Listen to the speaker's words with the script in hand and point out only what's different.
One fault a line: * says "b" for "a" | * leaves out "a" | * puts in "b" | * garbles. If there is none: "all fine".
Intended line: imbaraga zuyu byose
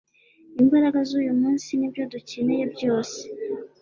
* puts in "munsi nibyo dukeneye"